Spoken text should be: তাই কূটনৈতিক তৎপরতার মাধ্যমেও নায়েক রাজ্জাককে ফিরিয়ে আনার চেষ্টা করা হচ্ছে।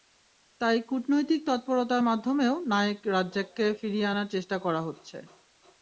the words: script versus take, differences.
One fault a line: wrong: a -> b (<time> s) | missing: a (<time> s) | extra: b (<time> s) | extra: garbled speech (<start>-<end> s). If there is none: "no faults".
no faults